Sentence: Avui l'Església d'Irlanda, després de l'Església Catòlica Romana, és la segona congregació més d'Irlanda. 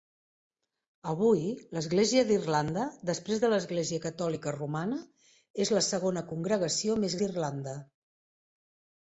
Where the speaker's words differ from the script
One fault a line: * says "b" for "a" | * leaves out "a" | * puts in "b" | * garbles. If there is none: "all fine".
all fine